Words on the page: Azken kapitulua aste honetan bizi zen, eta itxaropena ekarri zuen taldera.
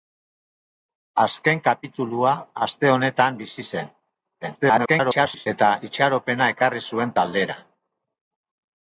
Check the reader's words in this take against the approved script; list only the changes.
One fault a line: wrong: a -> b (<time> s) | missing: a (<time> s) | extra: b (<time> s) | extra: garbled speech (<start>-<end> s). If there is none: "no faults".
extra: garbled speech (4.4-5.5 s)